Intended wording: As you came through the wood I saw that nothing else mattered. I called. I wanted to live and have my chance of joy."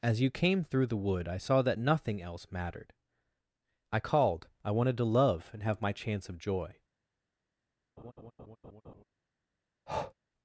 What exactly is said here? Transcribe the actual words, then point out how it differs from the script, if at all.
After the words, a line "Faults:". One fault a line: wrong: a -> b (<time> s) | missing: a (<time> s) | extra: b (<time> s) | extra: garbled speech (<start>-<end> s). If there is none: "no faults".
As you came through the wood I saw that nothing else mattered. I called. I wanted to love and have my chance of joy."
Faults:
wrong: live -> love (5.0 s)